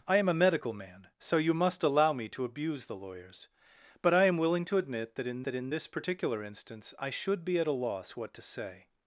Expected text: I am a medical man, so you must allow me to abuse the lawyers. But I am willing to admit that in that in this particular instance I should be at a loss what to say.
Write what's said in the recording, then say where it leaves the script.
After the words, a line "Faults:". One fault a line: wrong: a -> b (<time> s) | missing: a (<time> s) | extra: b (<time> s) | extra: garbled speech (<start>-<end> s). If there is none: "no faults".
I am a medical man, so you must allow me to abuse the lawyers. But I am willing to admit that in that in this particular instance I should be at a loss what to say.
Faults:
no faults